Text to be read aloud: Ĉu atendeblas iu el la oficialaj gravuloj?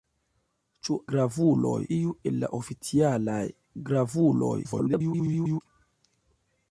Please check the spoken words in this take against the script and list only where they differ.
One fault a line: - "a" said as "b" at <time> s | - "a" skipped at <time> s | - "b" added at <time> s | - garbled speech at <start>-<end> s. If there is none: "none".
- "atendeblas" said as "gravuloj" at 1.1 s
- garbled speech at 4.6-5.6 s